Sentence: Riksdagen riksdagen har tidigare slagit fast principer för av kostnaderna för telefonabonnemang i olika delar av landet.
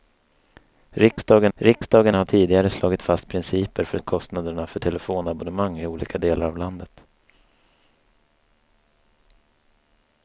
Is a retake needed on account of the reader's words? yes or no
no